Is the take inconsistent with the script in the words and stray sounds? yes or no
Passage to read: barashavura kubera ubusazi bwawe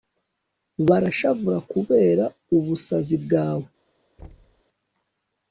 yes